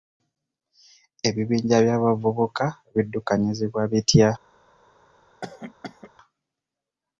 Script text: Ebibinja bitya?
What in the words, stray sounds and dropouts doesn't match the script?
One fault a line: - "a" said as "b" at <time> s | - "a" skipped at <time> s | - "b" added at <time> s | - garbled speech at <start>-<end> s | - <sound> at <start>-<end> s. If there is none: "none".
- "by'abavubuka biddukanyizibwa" added at 1.9 s
- cough at 5.4-6.1 s